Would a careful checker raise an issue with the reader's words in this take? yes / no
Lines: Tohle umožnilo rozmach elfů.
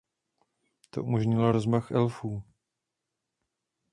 yes